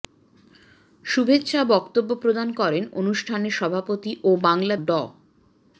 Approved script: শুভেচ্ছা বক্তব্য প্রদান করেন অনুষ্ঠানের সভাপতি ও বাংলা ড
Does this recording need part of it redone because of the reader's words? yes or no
no